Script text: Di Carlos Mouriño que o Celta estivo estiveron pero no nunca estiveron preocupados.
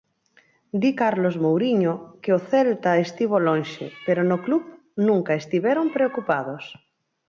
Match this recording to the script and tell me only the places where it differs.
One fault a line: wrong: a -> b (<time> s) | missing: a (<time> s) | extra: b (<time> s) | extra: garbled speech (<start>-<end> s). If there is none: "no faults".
wrong: estiveron -> lonxe (3.5 s)
extra: club (4.5 s)